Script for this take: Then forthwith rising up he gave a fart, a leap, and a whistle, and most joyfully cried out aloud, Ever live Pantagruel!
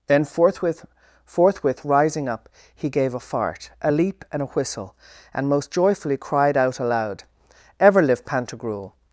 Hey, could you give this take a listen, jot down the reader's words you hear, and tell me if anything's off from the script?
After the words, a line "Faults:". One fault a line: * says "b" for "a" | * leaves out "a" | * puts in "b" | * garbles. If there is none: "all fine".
Then forthwith forthwith rising up he gave a fart, a leap, and a whistle, and most joyfully cried out aloud, Ever live Pantagruel!
Faults:
* puts in "forthwith"